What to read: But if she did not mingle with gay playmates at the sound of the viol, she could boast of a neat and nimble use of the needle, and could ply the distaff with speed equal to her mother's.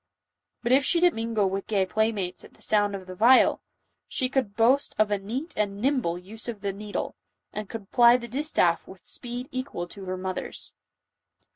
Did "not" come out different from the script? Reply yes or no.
yes